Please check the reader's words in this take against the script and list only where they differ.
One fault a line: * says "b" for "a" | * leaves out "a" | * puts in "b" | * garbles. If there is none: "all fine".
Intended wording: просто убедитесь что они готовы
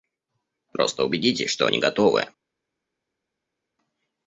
all fine